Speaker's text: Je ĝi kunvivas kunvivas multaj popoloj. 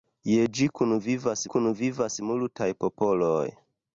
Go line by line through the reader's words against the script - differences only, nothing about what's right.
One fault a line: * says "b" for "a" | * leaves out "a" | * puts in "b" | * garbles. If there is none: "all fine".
all fine